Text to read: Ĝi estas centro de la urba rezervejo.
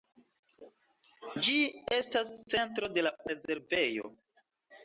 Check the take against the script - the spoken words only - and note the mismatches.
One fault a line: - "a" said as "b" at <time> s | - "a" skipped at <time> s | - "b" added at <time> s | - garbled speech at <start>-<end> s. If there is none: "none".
- "urba" skipped at 3.1 s